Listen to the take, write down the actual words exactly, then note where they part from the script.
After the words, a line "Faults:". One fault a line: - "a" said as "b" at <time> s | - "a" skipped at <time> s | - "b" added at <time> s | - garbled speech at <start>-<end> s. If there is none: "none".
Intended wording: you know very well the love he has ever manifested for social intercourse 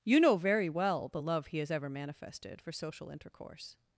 you know very well the love he has ever manifested for social intercourse
Faults:
none